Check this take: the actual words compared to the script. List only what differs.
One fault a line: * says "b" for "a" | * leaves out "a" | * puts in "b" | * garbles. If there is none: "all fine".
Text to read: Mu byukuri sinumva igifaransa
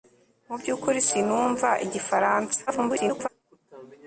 * garbles